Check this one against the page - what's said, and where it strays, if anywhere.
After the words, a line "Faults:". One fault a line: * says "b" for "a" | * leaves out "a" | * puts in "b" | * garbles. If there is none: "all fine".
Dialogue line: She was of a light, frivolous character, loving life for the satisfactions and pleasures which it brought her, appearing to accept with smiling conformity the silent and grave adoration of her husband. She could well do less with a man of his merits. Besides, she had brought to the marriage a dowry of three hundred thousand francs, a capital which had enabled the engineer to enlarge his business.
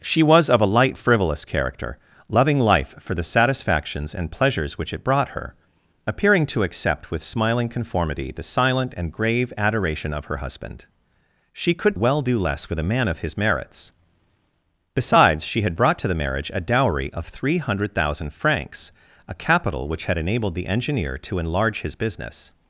She was of a light, frivolous character, loving life for the satisfactions and pleasures which it brought her, appearing to accept with smiling conformity the silent and grave adoration of her husband. She could well do less with a man of his merits. Besides, she had brought to the marriage a dowry of three hundred thousand francs, a capital which had enabled the engineer to enlarge his business.
Faults:
all fine